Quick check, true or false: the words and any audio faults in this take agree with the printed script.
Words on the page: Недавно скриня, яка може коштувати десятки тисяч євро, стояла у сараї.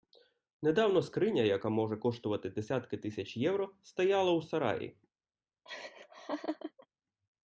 false